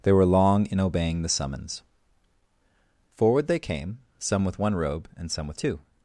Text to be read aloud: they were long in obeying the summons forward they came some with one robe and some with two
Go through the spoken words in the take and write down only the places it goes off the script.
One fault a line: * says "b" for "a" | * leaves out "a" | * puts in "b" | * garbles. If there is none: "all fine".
all fine